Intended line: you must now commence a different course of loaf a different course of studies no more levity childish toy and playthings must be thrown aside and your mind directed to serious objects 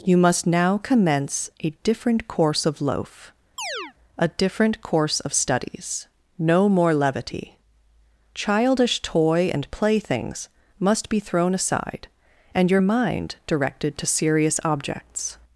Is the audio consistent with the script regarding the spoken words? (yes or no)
yes